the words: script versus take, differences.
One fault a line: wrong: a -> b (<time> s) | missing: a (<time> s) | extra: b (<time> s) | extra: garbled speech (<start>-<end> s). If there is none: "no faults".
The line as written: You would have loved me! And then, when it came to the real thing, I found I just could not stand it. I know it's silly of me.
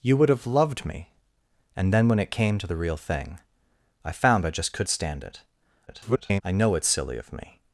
missing: not (4.9 s)
extra: garbled speech (5.9-6.4 s)